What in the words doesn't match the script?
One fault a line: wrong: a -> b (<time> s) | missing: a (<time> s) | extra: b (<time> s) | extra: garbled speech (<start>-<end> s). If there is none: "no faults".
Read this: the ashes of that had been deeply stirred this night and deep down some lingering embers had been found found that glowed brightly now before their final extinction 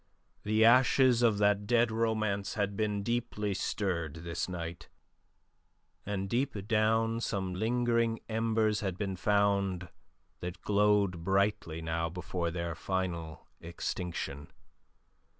extra: dead romance (1.7 s)
missing: found (9.9 s)